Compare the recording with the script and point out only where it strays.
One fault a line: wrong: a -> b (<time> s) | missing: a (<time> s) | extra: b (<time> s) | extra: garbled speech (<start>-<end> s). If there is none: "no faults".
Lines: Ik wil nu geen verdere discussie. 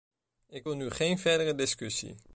no faults